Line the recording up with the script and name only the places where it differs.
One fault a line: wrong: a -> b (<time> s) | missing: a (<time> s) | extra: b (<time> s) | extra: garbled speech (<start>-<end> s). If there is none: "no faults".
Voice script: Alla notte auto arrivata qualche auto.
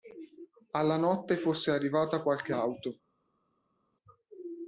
wrong: auto -> fosse (1.4 s)